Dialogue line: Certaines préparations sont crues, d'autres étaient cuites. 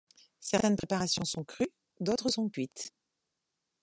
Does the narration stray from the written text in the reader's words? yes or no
yes